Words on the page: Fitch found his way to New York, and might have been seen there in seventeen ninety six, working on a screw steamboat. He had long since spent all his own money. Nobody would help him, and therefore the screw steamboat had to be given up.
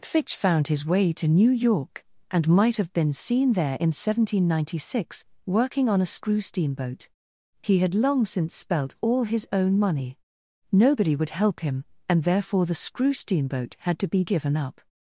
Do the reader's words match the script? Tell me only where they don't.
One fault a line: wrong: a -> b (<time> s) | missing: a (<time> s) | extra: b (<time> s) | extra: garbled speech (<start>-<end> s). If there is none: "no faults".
wrong: spent -> spelt (8.5 s)